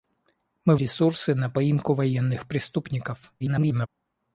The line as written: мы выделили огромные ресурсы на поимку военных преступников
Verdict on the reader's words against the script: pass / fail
fail